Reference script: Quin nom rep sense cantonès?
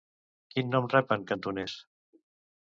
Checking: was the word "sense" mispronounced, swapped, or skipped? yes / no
yes